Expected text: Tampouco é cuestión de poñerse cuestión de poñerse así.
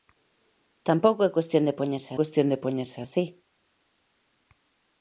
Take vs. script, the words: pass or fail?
pass